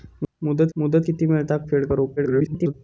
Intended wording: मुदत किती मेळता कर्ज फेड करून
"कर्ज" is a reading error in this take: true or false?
true